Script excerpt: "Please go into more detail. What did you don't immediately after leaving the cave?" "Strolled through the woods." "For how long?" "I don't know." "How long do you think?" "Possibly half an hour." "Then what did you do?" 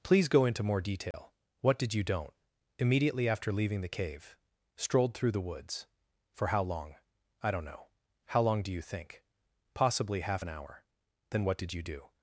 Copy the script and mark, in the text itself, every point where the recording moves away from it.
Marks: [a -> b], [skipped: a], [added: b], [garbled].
"Please go into more detail. What did you don't immediately after leaving the cave?" "Strolled through the woods." "For how long?" "I don't know." "How long do you think?" "Possibly half an hour." "Then what did you do?"